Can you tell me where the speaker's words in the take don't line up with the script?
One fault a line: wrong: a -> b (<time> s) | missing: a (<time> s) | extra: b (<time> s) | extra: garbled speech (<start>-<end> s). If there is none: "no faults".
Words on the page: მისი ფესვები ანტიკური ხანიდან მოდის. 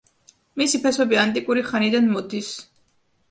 no faults